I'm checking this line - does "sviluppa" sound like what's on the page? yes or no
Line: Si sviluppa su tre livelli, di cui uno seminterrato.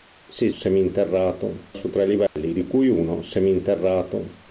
no